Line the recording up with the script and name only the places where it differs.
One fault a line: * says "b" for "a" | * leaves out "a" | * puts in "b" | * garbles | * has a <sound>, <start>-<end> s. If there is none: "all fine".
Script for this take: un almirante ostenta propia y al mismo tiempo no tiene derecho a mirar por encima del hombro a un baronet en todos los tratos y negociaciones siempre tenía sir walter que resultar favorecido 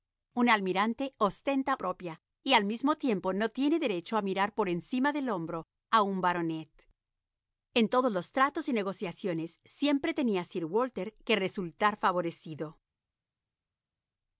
all fine